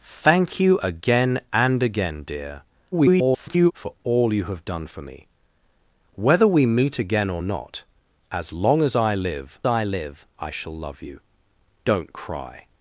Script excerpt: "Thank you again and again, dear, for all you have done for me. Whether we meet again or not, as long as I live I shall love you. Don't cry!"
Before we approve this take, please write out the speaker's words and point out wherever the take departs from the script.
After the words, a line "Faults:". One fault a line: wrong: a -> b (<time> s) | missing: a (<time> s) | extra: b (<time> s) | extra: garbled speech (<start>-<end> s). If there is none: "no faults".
"Thank you again and again, dear, [garbled] for all you have done for me. Whether we meet again or not, as long as I live I live I shall love you. Don't cry!"
Faults:
extra: garbled speech (2.9-3.7 s)
extra: live I (9.8 s)